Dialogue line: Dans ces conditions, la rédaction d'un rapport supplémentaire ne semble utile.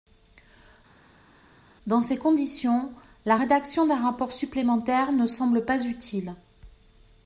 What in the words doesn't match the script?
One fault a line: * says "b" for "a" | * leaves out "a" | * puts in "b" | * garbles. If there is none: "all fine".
* puts in "pas"